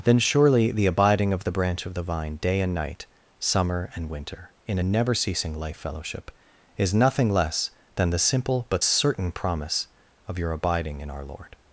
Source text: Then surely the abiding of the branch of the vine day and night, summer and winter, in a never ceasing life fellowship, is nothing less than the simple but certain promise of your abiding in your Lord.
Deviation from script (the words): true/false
true